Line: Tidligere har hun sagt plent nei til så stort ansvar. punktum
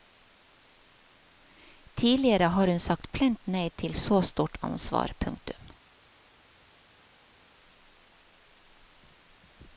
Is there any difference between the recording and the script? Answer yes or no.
no